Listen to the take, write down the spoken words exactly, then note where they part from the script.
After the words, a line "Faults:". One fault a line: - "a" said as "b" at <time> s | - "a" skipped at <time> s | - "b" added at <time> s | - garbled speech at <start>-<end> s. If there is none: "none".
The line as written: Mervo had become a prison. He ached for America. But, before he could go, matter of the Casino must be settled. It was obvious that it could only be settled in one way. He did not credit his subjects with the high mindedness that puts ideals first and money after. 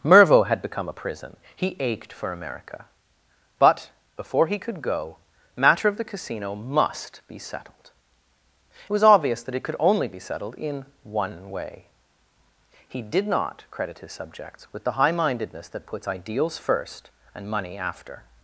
Mervo had become a prison. He ached for America. But, before he could go, matter of the Casino must be settled. It was obvious that it could only be settled in one way. He did not credit his subjects with the high mindedness that puts ideals first and money after.
Faults:
none